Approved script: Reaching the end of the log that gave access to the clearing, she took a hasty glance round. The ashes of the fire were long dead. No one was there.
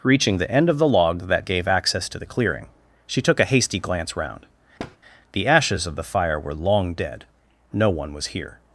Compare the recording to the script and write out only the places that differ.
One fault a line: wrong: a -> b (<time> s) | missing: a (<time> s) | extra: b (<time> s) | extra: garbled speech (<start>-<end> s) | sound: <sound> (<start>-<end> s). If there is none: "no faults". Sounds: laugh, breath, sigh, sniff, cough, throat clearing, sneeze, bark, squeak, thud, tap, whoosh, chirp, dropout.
sound: thud (4.8-5.0 s)
wrong: there -> here (8.3 s)